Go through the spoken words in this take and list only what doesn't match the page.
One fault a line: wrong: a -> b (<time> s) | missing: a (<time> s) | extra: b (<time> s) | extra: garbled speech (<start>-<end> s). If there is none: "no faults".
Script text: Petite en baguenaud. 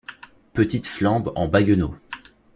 extra: flambe (0.8 s)